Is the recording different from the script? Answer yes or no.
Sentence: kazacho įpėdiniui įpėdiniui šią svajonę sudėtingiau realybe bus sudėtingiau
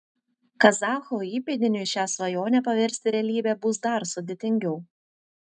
yes